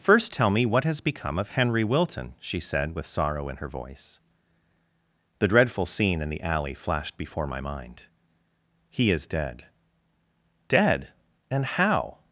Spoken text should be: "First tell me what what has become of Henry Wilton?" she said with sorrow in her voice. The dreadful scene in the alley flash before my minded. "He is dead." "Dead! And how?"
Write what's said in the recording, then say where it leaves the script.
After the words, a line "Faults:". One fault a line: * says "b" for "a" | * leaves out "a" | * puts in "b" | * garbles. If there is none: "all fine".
"First tell me what has become of Henry Wilton?" she said with sorrow in her voice. The dreadful scene in the alley flashed before my mind. "He is dead." "Dead! And how?"
Faults:
* leaves out "what"
* says "flashed" for "flash"
* says "mind" for "minded"